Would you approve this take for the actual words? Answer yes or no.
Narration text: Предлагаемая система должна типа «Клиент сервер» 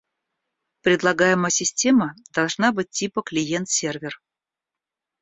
no